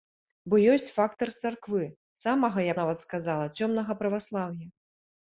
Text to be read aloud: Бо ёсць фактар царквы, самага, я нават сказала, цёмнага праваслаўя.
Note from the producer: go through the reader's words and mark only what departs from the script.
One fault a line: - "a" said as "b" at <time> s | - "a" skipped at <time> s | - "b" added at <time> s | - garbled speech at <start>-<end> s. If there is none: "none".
none